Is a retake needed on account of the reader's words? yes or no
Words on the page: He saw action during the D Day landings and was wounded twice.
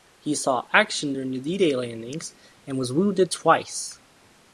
no